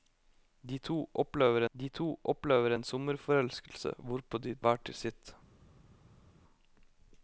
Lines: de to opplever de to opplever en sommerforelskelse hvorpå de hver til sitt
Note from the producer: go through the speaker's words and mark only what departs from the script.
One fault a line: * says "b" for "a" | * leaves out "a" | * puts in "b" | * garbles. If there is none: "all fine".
all fine